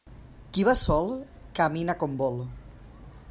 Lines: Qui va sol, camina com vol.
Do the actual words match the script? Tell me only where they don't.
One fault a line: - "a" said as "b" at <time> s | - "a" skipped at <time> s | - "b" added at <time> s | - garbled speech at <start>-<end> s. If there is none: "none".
none